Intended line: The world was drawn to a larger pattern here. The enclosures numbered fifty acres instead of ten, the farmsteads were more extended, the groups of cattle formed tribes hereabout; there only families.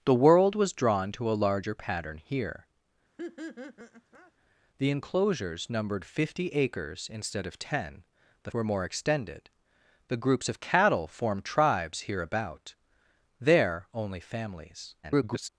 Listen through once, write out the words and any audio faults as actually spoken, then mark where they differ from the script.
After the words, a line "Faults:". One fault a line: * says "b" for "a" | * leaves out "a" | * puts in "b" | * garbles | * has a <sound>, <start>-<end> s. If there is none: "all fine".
The world was drawn to a larger pattern here. The enclosures numbered fifty acres instead of ten, the were more extended, the groups of cattle formed tribes hereabout; there only families. [garbled]
Faults:
* has a laugh, 3.2-4.3 s
* leaves out "farmsteads"
* garbles